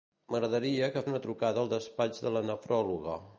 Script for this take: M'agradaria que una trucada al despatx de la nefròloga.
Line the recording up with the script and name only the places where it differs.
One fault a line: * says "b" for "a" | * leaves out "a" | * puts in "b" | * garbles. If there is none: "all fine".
all fine